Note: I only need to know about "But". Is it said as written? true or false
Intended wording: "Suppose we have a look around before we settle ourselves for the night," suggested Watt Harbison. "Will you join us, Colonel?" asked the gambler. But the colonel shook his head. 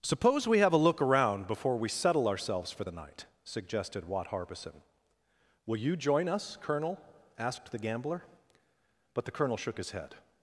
true